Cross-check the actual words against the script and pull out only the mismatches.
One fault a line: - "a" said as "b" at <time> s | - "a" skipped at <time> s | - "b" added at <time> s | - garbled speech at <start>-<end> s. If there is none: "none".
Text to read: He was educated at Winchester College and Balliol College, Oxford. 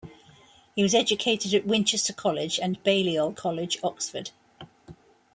none